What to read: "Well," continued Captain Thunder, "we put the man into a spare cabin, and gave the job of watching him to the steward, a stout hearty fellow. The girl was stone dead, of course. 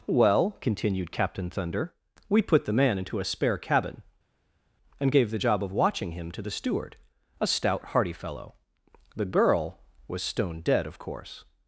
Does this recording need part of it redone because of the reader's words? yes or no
no